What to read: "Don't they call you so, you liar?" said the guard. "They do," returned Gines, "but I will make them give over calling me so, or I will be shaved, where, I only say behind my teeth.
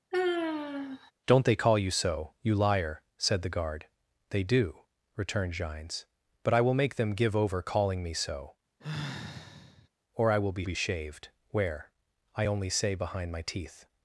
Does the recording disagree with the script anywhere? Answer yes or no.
yes